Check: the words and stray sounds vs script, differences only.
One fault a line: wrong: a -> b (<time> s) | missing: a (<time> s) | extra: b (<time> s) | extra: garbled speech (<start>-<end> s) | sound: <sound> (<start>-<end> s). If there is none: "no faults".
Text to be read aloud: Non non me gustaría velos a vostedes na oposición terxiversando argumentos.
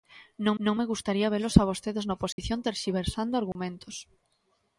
sound: dropout (2.3-2.4 s)
sound: dropout (3.5-3.6 s)